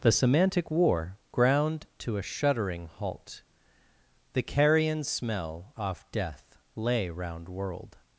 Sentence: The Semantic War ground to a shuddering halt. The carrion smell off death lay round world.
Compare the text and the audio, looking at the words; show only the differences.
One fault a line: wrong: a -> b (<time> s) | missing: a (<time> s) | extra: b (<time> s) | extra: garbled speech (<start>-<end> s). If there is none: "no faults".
no faults